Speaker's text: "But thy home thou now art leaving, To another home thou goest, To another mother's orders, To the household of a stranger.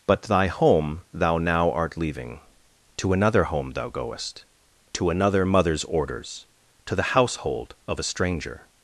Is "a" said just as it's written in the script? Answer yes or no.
yes